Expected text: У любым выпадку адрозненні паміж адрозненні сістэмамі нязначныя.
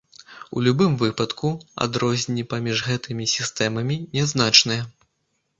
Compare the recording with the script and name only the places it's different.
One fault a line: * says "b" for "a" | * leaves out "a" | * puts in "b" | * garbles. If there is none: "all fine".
* says "гэтымі" for "адрозненні"